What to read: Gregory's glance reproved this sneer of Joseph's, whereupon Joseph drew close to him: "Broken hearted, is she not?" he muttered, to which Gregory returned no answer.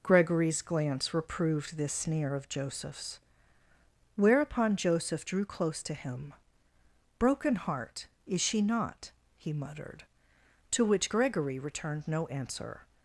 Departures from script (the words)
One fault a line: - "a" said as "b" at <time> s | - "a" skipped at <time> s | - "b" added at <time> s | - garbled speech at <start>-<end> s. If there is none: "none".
- "hearted" said as "heart" at 7.6 s